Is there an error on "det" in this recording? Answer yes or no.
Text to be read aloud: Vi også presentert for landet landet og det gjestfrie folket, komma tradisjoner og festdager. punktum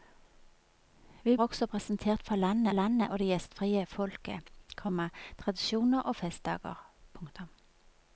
no